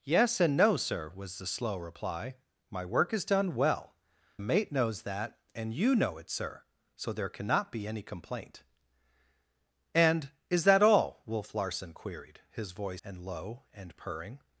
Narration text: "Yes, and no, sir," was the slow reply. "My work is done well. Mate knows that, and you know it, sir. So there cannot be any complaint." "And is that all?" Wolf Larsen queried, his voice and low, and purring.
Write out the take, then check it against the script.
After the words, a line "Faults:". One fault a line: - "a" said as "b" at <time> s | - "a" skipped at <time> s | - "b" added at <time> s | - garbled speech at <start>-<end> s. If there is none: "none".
"Yes, and no, sir," was the slow reply. "My work is done well. Mate knows that, and you know it, sir. So there cannot be any complaint." "And is that all?" Wolf Larsen queried, his voice and low, and purring.
Faults:
none